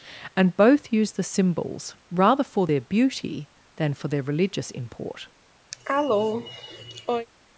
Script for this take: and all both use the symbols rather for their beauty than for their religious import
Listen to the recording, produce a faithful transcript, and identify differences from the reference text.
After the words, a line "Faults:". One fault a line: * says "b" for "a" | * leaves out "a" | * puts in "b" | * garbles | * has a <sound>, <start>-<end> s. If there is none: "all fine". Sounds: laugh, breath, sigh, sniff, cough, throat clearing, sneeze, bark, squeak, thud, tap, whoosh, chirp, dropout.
and both use the symbols rather for their beauty than for their religious import
Faults:
* leaves out "all"
* has a cough, 5.7-7.3 s